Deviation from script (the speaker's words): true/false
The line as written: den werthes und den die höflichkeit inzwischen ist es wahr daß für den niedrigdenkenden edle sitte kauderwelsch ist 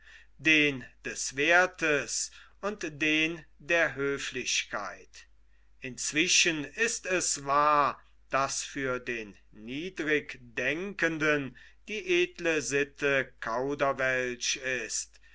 true